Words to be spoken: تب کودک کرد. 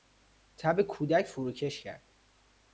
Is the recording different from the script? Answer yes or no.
yes